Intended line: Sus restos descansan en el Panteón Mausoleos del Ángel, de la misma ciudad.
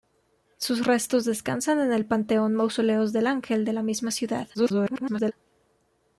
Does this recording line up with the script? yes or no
no